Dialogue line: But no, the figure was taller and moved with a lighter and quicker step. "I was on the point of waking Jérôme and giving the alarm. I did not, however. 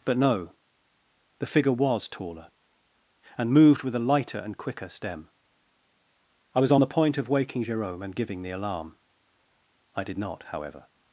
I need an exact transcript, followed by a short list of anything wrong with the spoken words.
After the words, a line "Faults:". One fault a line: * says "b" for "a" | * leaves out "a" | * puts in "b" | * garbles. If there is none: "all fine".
But no, the figure was taller and moved with a lighter and quicker stem. "I was on the point of waking Jérôme and giving the alarm. I did not, however.
Faults:
* says "stem" for "step"